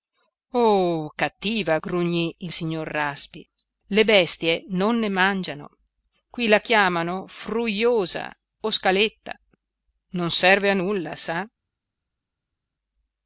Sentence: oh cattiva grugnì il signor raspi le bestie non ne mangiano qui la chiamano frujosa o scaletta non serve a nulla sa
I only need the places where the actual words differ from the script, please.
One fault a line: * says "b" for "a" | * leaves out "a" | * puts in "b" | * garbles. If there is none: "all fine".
all fine